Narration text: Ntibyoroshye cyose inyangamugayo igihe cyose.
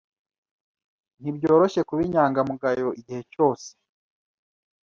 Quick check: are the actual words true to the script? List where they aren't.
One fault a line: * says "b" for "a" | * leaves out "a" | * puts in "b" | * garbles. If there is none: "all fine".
* says "kuba" for "cyose"